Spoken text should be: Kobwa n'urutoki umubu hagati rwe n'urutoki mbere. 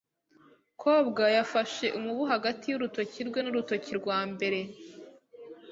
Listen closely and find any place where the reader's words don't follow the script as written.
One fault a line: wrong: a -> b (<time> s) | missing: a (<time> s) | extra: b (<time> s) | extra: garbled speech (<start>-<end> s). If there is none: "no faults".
wrong: n'urutoki -> yafashe (1.4 s)
extra: y'urutoki (2.7 s)
extra: rwa (4.0 s)